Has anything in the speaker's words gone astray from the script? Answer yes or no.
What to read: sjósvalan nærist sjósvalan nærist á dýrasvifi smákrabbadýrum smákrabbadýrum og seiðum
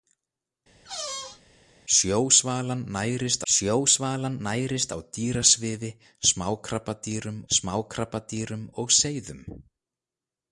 no